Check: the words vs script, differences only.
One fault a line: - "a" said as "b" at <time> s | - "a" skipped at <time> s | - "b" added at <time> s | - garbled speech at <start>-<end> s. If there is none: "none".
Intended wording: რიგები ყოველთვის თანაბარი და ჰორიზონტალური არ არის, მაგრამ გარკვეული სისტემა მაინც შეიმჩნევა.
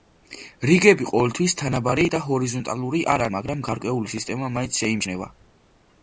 - "არის" skipped at 3.2 s